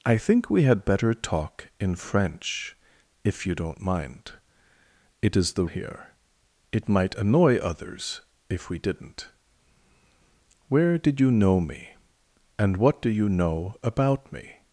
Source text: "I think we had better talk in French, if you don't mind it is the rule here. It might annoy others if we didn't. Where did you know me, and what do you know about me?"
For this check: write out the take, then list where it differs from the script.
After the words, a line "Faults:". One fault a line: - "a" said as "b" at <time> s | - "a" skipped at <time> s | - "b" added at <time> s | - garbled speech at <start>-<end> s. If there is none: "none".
"I think we had better talk in French, if you don't mind it is the here. It might annoy others if we didn't. Where did you know me, and what do you know about me?"
Faults:
- "rule" skipped at 5.7 s